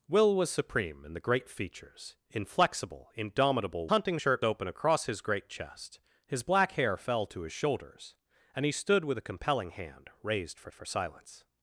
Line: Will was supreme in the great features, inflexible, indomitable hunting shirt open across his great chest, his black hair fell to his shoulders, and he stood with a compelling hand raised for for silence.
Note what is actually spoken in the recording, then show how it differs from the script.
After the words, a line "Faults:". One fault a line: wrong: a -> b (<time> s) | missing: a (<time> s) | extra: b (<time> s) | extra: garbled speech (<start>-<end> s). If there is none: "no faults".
Will was supreme in the great features, inflexible, indomitable hunting shirt open across his great chest, his black hair fell to his shoulders, and he stood with a compelling hand raised for for silence.
Faults:
no faults